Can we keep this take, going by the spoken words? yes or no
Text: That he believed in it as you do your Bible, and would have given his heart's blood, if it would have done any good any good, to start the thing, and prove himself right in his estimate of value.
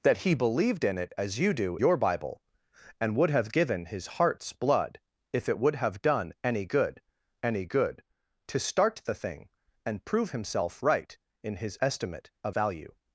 yes